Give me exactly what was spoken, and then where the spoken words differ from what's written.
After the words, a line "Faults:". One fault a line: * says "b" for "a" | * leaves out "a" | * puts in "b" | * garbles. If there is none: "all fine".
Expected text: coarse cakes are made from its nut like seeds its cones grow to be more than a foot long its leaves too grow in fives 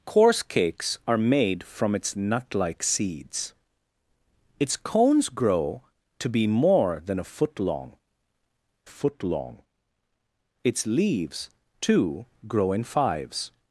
coarse cakes are made from its nut like seeds its cones grow to be more than a foot long foot long its leaves too grow in fives
Faults:
* puts in "foot long"